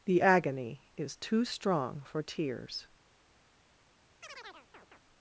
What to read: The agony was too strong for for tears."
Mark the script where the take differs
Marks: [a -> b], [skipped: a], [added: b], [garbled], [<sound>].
The agony [was -> is] too strong for [skipped: for] tears." [chirp]